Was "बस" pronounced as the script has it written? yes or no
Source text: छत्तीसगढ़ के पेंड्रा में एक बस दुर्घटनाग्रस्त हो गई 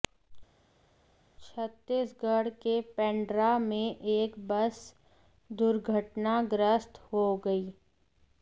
yes